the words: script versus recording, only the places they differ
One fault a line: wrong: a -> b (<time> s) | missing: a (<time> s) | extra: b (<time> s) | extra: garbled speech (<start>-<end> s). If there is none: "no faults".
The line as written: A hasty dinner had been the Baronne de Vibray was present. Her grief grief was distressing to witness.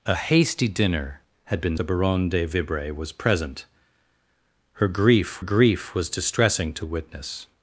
no faults